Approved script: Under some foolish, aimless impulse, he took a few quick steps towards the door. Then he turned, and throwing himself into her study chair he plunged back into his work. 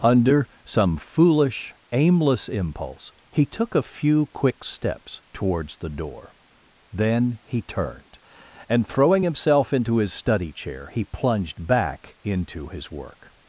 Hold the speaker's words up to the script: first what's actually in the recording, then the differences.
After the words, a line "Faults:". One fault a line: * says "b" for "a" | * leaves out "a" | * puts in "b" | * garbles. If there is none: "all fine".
Under some foolish, aimless impulse, he took a few quick steps towards the door. Then he turned, and throwing himself into his study chair he plunged back into his work.
Faults:
* says "his" for "her"